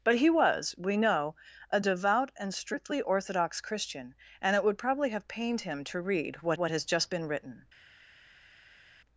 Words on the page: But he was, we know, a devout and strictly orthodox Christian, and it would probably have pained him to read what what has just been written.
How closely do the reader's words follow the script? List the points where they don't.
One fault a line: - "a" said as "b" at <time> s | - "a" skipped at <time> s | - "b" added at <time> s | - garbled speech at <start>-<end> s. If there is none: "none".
none